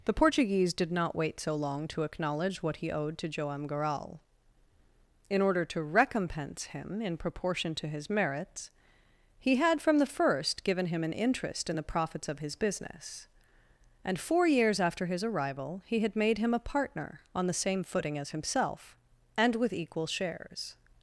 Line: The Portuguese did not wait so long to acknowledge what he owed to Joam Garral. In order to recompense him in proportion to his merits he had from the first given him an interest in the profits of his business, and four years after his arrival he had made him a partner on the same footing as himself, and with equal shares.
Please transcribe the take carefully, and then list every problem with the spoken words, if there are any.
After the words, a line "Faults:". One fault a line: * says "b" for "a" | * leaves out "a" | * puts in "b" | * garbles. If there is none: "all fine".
The Portuguese did not wait so long to acknowledge what he owed to Joam Garral. In order to recompense him in proportion to his merits he had from the first given him an interest in the profits of his business, and four years after his arrival he had made him a partner on the same footing as himself, and with equal shares.
Faults:
all fine